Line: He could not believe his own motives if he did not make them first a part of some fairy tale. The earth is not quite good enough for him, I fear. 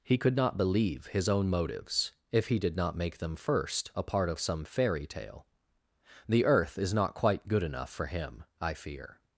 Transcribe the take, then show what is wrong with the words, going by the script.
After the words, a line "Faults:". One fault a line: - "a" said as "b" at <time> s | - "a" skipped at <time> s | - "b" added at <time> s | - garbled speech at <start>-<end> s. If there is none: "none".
He could not believe his own motives if he did not make them first a part of some fairy tale. The earth is not quite good enough for him, I fear.
Faults:
none